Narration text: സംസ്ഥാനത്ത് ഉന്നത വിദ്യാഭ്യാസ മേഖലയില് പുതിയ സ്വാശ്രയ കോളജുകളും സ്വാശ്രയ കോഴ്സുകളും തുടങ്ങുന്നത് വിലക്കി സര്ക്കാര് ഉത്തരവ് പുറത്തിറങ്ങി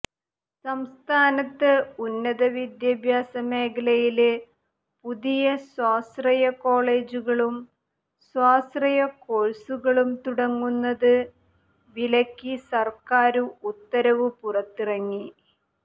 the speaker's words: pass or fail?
pass